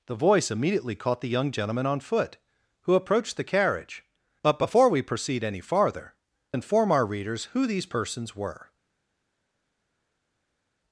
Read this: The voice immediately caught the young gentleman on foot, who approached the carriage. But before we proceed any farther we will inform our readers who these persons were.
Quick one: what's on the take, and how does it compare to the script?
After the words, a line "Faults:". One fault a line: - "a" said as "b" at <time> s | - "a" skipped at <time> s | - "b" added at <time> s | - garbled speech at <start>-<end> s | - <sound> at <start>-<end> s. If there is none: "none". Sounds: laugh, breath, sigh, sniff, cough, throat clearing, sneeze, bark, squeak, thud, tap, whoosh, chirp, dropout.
The voice immediately caught the young gentleman on foot, who approached the carriage. But before we proceed any farther inform our readers who these persons were.
Faults:
- "we will" skipped at 6.2 s